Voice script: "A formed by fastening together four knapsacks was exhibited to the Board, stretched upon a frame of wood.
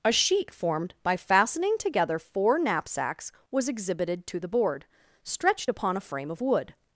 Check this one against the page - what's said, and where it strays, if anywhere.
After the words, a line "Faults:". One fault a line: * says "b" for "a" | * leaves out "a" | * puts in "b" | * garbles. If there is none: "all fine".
"A sheet formed by fastening together four knapsacks was exhibited to the Board, stretched upon a frame of wood.
Faults:
* puts in "sheet"